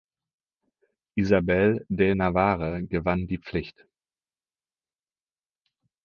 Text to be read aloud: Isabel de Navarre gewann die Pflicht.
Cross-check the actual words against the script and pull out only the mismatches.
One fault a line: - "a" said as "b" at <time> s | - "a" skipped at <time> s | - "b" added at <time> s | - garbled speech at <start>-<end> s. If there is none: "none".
none